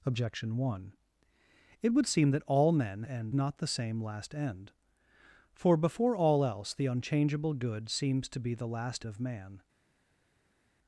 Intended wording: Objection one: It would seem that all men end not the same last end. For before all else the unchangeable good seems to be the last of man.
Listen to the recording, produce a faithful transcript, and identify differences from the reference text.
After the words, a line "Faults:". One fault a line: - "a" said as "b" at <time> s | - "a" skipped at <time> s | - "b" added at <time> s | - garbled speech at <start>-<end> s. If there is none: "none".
Objection one: It would seem that all men end not the same last end. For before all else the unchangeable good seems to be the last of man.
Faults:
none